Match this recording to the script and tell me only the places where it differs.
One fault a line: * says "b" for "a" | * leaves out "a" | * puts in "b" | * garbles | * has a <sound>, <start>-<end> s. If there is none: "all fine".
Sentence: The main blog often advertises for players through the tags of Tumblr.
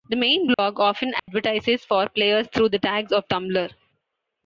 * has a dropout, 0.5-0.6 s
* has a dropout, 1.2-1.3 s